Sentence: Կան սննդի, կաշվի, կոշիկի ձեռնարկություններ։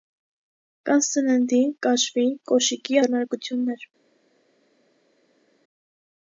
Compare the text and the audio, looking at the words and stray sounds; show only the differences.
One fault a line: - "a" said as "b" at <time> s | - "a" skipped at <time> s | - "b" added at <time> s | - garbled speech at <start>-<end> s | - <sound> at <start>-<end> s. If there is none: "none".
none